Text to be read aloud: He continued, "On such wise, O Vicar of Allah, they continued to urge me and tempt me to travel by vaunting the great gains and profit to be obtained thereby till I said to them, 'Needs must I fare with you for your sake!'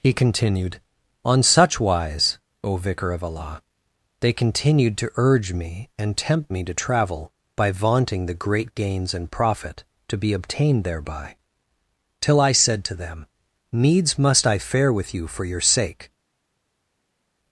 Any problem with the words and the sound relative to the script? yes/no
no